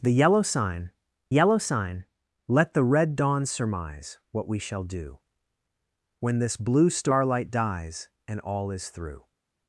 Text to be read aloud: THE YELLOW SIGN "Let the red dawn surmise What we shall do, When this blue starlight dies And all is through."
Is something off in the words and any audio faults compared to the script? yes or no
yes